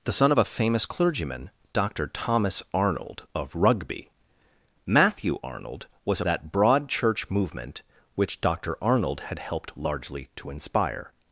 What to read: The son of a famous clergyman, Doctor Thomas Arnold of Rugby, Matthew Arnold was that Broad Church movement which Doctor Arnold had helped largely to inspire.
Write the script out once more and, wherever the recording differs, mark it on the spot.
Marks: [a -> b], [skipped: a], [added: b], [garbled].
The son of a famous clergyman, Doctor Thomas Arnold of Rugby, Matthew Arnold was that Broad Church movement which Doctor Arnold had helped largely to inspire.